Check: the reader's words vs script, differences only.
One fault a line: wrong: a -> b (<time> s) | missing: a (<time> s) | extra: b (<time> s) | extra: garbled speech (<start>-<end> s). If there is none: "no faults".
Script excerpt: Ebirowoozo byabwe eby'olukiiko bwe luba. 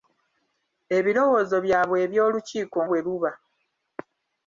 no faults